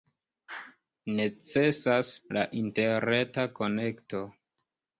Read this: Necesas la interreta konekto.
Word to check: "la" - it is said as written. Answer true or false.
true